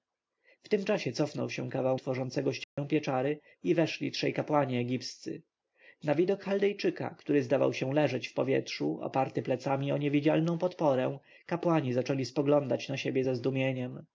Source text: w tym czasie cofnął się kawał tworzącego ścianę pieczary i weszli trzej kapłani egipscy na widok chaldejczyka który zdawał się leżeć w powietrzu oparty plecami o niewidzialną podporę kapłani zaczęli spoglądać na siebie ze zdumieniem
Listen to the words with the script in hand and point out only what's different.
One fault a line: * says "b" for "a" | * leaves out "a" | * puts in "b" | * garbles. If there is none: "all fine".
all fine